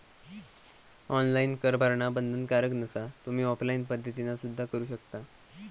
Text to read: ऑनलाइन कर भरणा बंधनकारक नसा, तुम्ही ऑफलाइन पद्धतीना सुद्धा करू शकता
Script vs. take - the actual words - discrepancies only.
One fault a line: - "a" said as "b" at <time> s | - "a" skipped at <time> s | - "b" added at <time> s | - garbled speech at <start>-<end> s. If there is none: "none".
none